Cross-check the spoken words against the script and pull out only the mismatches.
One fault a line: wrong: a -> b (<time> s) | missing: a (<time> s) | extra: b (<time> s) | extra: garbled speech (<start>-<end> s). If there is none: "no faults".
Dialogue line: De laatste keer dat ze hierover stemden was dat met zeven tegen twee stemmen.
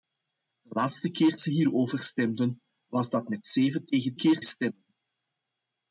missing: dat (1.4 s)
wrong: twee -> keer (4.2 s)